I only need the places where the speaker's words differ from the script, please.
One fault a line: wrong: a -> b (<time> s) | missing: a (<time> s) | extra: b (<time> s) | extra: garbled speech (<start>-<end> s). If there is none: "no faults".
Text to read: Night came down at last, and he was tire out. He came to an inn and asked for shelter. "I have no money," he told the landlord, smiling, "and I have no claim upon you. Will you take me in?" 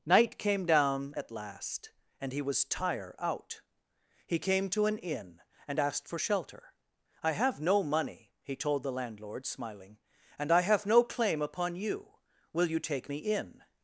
no faults